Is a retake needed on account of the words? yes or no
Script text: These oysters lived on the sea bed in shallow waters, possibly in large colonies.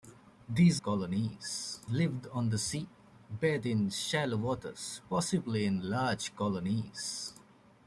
yes